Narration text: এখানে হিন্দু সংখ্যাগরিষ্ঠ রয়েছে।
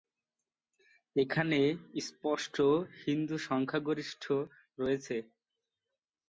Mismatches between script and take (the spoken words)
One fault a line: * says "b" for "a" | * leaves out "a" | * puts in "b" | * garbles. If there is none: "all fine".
* puts in "স্পষ্ট"